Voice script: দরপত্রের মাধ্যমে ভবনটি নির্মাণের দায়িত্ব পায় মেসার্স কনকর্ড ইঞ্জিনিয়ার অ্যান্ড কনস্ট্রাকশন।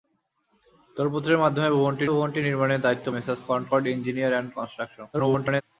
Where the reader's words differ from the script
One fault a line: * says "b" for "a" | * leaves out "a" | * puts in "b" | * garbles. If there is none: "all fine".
* puts in "ভবনটি"
* leaves out "পায়"
* garbles